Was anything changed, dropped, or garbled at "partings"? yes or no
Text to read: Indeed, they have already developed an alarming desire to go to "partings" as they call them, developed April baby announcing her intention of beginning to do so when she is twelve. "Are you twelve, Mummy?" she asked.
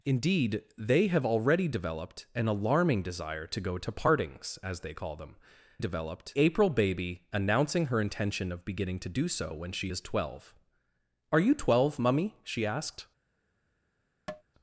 no